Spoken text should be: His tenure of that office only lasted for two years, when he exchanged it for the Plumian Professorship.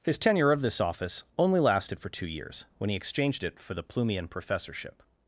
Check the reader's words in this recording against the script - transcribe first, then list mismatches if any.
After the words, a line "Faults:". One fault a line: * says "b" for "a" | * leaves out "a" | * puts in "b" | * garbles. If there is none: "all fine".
His tenure of this office only lasted for two years, when he exchanged it for the Plumian Professorship.
Faults:
* says "this" for "that"